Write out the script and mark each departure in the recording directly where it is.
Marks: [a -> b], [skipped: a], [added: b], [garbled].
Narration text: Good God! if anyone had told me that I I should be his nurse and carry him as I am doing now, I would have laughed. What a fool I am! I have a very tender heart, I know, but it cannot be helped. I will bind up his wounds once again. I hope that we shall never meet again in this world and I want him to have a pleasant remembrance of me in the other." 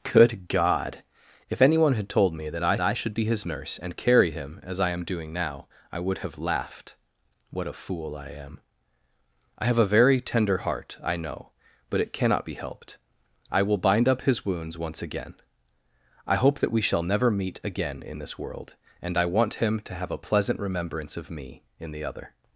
Good God! if anyone had told me that I I should be his nurse and carry him as I am doing now, I would have laughed. What a fool I am! I have a very tender heart, I know, but it cannot be helped. I will bind up his wounds once again. I hope that we shall never meet again in this world and I want him to have a pleasant remembrance of me in the other."